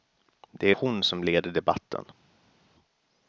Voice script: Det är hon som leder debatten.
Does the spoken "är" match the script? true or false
false